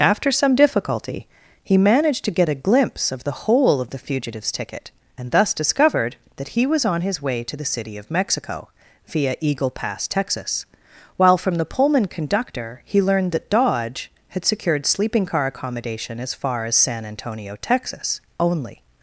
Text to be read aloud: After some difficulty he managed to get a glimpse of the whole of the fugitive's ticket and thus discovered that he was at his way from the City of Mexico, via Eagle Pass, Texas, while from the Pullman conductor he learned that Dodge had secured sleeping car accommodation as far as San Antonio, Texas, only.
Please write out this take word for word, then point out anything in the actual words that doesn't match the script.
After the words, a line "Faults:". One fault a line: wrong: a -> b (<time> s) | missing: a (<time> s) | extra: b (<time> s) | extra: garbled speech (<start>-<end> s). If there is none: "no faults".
After some difficulty he managed to get a glimpse of the whole of the fugitive's ticket and thus discovered that he was on his way to the City of Mexico, via Eagle Pass, Texas, while from the Pullman conductor he learned that Dodge had secured sleeping car accommodation as far as San Antonio, Texas, only.
Faults:
wrong: at -> on (6.8 s)
wrong: from -> to (7.4 s)